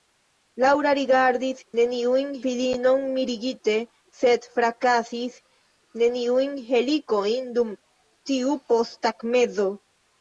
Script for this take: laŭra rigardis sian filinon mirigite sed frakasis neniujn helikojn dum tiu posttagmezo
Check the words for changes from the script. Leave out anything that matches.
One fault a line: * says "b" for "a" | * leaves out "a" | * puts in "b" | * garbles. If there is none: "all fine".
* says "neniujn" for "sian"